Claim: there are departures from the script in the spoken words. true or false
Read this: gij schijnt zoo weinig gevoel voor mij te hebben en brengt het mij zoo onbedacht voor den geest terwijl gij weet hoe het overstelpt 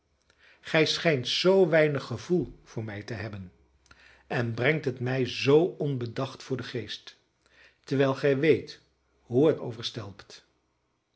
false